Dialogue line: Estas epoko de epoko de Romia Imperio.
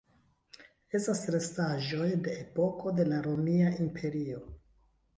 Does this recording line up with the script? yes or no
no